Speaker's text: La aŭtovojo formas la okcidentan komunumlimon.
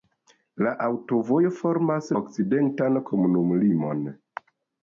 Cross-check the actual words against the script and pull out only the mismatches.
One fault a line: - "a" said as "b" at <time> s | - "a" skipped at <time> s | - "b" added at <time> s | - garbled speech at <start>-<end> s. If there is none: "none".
- "la" skipped at 2.1 s